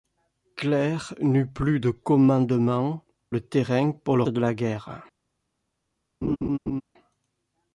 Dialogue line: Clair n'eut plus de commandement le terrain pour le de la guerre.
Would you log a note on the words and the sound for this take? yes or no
yes